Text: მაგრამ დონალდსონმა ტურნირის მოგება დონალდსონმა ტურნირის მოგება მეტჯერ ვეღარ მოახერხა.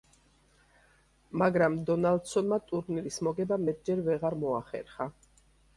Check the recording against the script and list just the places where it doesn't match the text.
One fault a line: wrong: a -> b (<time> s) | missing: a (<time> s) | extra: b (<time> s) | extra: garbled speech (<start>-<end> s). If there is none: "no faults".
missing: დონალდსონმა ტურნირის მოგება (3.6 s)